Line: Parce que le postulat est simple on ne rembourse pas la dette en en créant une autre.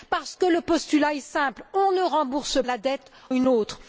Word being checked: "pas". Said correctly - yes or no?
no